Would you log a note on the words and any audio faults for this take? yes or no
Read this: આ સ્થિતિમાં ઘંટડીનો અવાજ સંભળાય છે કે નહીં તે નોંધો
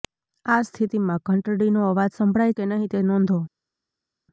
yes